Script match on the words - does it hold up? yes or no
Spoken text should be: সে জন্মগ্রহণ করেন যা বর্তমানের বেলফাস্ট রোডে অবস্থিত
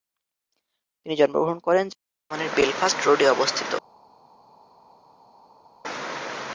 no